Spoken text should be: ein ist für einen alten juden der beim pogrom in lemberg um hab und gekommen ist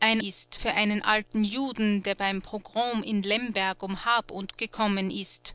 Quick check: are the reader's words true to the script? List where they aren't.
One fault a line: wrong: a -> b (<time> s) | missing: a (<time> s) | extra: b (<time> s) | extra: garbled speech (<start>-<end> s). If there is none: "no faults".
no faults